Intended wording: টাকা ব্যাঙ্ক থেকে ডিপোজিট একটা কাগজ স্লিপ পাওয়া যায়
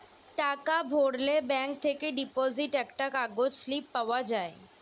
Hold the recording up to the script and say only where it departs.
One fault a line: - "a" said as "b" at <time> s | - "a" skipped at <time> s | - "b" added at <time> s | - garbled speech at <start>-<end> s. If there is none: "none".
- "ভরলে" added at 0.9 s